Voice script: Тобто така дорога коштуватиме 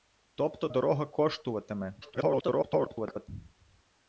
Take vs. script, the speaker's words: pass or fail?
fail